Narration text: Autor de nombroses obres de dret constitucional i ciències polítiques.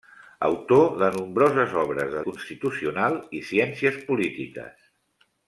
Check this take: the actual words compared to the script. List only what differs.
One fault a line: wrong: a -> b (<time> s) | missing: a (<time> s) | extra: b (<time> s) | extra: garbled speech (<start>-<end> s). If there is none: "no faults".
missing: dret (2.2 s)